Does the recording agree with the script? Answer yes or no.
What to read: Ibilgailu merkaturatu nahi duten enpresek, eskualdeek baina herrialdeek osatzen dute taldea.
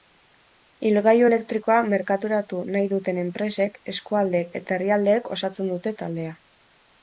no